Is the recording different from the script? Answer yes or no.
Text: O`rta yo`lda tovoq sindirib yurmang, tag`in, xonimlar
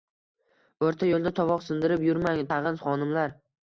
no